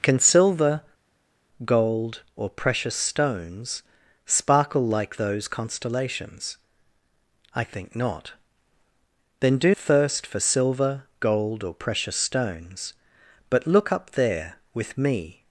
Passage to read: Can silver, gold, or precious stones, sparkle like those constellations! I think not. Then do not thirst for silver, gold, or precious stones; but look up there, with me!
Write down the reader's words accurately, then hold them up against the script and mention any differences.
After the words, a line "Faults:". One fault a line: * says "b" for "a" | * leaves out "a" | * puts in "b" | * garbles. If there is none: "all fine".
Can silver, gold, or precious stones, sparkle like those constellations! I think not. Then do thirst for silver, gold, or precious stones; but look up there, with me!
Faults:
* leaves out "not"